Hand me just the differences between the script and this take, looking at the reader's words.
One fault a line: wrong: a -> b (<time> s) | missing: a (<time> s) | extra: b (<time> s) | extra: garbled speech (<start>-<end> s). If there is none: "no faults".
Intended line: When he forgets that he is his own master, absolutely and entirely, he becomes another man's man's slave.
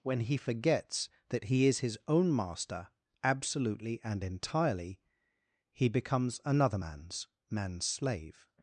no faults